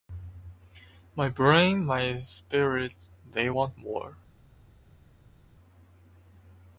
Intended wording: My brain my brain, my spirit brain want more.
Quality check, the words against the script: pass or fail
fail